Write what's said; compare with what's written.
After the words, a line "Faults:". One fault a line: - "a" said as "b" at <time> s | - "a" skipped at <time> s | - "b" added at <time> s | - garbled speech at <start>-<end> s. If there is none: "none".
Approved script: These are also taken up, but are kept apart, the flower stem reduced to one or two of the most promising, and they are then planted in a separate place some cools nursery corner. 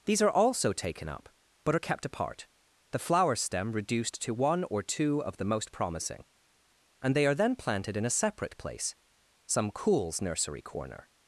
These are also taken up, but are kept apart, the flower stem reduced to one or two of the most promising, and they are then planted in a separate place some cools nursery corner.
Faults:
none